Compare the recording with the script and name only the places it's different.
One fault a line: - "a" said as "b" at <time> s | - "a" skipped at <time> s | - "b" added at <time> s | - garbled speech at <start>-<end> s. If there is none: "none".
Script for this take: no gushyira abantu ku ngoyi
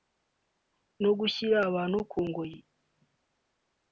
none